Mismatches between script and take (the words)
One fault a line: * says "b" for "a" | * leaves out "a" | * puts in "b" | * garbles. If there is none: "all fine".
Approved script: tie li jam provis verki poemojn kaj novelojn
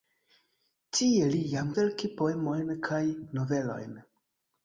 * leaves out "provis"